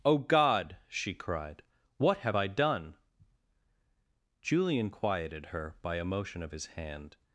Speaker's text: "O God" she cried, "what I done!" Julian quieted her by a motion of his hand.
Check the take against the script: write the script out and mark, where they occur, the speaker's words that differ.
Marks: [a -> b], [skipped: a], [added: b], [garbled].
"O God" she cried, "what [added: have] I done!" Julian quieted her by a motion of his hand.